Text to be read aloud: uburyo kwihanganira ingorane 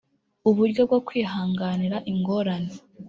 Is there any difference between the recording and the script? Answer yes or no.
yes